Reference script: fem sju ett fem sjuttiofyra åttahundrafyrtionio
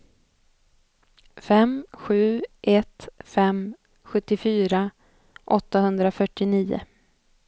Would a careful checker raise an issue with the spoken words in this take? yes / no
no